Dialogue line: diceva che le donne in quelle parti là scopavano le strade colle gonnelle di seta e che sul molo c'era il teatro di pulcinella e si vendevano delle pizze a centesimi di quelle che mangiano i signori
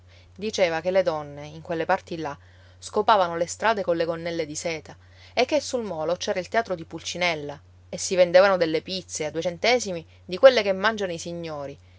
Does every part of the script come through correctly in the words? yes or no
no